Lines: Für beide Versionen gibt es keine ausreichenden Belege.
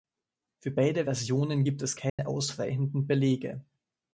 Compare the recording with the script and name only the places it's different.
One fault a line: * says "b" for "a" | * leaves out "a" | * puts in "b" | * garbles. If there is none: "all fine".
all fine